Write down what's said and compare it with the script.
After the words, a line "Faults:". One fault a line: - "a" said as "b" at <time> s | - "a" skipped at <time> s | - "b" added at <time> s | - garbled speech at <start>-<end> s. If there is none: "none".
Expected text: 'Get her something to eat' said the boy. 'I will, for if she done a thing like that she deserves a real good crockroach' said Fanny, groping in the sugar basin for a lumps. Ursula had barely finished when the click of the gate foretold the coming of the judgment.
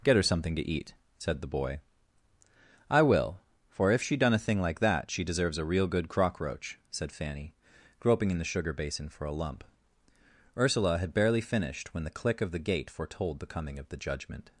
'Get her something to eat' said the boy. 'I will, for if she done a thing like that she deserves a real good crockroach' said Fanny, groping in the sugar basin for a lump. Ursula had barely finished when the click of the gate foretold the coming of the judgment.
Faults:
- "lumps" said as "lump" at 9.3 s